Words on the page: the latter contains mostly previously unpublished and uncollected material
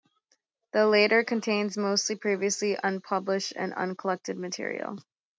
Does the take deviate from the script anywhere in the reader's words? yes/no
no